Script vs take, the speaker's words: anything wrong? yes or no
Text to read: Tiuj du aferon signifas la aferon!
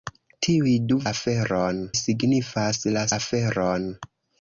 no